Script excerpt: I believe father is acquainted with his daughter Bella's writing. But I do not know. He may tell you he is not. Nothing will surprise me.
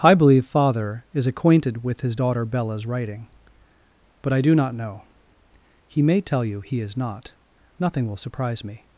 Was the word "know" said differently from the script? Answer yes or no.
no